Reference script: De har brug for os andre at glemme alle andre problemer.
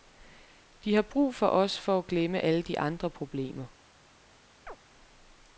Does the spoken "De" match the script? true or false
true